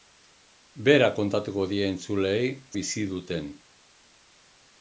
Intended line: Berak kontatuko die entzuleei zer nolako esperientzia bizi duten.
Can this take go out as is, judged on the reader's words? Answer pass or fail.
fail